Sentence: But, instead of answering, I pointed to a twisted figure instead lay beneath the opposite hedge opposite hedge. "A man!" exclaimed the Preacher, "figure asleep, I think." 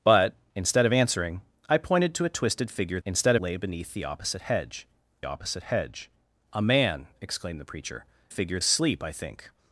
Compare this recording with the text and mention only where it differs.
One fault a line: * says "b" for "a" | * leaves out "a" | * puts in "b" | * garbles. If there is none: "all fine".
all fine